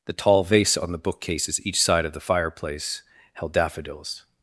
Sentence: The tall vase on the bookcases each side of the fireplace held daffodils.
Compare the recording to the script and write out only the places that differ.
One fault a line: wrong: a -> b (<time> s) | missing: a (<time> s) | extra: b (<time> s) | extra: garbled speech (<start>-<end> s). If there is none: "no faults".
no faults